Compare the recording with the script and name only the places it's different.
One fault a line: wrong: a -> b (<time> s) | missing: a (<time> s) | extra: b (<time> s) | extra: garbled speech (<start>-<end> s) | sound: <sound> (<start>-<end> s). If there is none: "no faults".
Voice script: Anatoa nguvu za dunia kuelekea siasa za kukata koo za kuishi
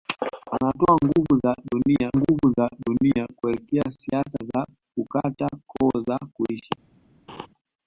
extra: nguvu za dunia (2.2 s)
sound: laugh (7.3-7.5 s)